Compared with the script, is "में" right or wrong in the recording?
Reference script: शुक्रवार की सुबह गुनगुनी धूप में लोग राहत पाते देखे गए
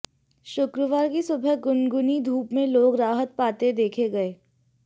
right